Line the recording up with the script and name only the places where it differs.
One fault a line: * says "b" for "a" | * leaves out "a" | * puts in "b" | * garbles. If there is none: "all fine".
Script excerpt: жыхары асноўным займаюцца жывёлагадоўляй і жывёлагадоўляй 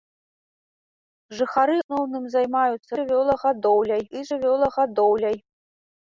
all fine